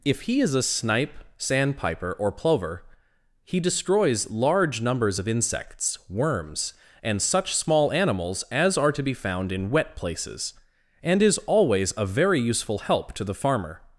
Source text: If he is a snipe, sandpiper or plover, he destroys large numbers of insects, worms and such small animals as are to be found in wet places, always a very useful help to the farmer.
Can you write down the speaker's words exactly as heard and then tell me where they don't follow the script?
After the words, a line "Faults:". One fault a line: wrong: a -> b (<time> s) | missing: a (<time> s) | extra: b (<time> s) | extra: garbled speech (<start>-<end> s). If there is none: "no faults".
If he is a snipe, sandpiper or plover, he destroys large numbers of insects, worms and such small animals as are to be found in wet places, and is always a very useful help to the farmer.
Faults:
extra: and is (11.0 s)